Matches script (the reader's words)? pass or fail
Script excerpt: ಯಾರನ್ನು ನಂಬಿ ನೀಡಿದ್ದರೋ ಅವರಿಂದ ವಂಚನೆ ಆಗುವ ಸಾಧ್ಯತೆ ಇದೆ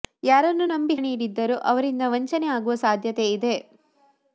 pass